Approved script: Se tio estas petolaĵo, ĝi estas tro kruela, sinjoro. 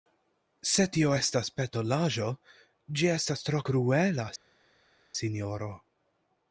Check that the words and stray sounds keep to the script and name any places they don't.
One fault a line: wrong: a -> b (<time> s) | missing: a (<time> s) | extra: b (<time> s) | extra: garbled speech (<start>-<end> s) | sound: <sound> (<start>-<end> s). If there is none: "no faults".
no faults